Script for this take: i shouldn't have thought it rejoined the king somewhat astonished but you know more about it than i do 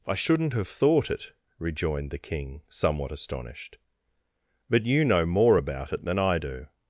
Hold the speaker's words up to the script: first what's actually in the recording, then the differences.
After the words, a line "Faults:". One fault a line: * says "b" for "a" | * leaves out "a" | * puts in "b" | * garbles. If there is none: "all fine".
i shouldn't have thought it rejoined the king somewhat astonished but you know more about it than i do
Faults:
all fine